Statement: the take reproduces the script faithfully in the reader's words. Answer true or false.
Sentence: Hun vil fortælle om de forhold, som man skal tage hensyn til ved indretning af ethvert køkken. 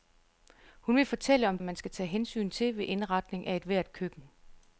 false